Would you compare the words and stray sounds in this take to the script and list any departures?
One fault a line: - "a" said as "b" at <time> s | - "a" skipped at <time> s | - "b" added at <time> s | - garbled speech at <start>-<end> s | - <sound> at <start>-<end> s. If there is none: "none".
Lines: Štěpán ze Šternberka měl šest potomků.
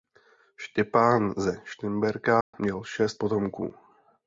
- dropout at 2.4-2.5 s